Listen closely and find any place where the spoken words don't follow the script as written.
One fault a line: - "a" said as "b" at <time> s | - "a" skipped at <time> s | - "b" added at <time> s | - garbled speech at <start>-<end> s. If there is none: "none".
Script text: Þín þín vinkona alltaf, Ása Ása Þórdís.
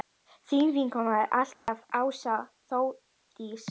- "þín" skipped at 0.7 s
- "Ása" skipped at 2.4 s